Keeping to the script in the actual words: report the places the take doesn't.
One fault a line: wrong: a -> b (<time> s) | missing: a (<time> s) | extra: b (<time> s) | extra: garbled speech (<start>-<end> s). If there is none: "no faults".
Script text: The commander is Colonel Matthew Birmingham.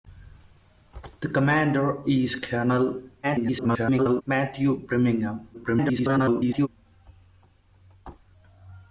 extra: garbled speech (3.2-4.2 s)
extra: garbled speech (5.5-6.7 s)